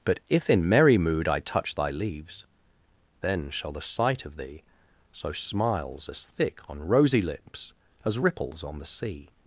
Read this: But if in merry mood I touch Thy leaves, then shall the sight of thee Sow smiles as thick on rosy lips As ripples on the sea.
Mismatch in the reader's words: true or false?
false